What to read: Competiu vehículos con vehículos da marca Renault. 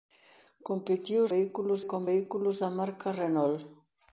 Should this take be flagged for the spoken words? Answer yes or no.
no